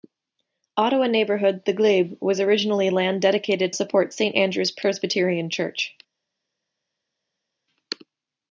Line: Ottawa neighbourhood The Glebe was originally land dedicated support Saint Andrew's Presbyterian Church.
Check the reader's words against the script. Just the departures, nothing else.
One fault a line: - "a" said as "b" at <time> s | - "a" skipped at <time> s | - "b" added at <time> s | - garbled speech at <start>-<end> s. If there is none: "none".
none